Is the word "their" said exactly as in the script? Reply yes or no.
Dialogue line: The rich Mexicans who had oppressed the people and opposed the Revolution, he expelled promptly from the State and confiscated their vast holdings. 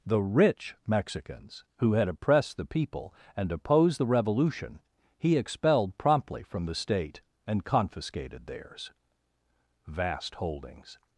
no